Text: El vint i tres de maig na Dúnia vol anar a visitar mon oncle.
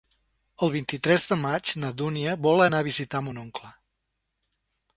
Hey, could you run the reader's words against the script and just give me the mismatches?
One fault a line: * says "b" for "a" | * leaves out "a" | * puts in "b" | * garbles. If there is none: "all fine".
all fine